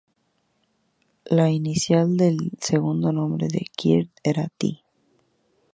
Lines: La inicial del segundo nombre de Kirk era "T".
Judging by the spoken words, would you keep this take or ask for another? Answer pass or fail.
pass